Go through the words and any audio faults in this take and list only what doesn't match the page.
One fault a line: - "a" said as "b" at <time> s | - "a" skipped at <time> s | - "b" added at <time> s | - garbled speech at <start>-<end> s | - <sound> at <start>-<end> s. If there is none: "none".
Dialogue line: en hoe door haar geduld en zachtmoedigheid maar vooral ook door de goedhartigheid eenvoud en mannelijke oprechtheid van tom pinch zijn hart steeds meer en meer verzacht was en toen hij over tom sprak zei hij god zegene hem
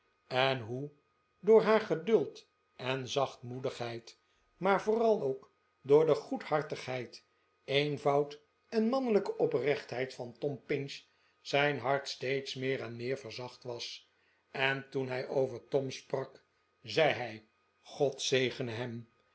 none